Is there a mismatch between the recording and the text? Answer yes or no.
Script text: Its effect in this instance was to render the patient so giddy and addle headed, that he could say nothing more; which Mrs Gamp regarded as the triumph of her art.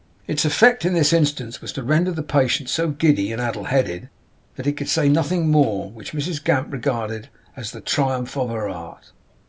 no